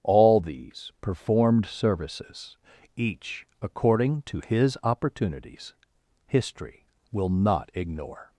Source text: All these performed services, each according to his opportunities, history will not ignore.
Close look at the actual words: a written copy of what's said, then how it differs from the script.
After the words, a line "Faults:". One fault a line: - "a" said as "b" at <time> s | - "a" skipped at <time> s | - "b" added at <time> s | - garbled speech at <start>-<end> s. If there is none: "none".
All these performed services, each according to his opportunities, history will not ignore.
Faults:
none